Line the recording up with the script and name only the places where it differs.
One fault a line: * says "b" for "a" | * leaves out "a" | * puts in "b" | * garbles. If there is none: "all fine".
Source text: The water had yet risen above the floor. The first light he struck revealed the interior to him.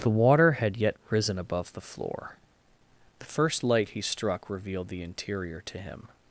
all fine